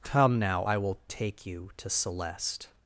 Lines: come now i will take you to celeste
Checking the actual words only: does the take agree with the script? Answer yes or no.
yes